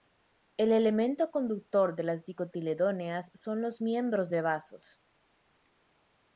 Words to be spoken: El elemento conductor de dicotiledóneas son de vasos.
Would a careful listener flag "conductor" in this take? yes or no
no